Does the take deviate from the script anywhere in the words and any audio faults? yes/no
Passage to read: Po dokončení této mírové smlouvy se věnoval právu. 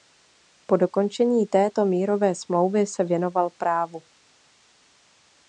no